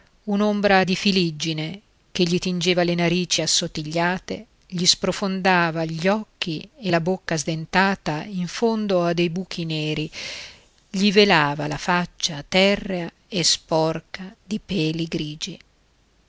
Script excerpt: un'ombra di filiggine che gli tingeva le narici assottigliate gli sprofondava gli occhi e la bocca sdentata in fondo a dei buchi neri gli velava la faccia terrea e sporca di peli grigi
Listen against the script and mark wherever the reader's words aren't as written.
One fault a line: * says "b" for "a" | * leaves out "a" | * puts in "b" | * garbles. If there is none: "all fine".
all fine